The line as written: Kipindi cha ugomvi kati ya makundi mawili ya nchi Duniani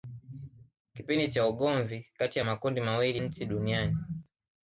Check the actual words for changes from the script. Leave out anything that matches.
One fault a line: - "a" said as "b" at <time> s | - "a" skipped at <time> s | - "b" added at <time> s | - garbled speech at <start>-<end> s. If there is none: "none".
- "ya" skipped at 3.2 s